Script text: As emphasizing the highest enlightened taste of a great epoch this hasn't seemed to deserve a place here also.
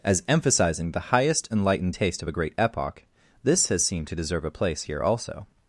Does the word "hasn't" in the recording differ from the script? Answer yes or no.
yes